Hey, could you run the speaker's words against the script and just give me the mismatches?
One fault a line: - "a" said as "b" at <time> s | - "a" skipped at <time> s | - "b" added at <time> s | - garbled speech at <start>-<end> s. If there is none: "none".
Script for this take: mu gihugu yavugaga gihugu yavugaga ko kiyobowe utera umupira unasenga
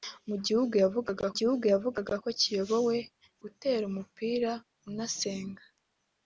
none